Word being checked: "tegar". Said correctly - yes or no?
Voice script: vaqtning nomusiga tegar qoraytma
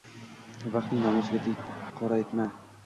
no